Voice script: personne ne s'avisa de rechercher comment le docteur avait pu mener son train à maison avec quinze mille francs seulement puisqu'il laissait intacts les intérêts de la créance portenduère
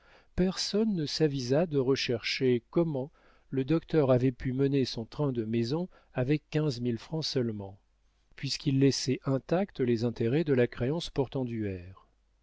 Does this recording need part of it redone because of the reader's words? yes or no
yes